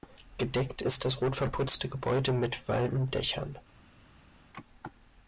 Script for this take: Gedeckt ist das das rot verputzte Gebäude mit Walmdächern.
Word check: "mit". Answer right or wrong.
right